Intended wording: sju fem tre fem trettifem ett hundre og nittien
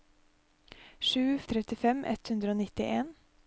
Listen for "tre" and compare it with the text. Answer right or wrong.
wrong